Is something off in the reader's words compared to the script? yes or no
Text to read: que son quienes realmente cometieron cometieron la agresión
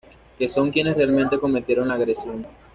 yes